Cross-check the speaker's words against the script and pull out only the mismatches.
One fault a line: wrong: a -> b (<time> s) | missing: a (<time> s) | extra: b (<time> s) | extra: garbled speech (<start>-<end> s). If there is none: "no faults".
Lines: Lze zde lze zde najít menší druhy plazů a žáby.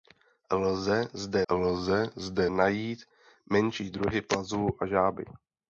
no faults